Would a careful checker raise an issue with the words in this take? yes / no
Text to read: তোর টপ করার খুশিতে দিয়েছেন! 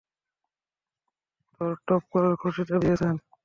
no